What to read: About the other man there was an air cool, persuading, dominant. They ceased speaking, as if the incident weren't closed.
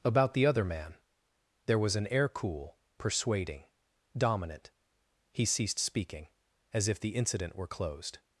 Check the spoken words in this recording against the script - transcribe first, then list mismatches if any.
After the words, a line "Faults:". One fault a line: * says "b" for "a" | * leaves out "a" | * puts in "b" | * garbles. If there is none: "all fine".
About the other man there was an air cool, persuading, dominant. He ceased speaking, as if the incident were closed.
Faults:
* says "He" for "They"
* says "were" for "weren't"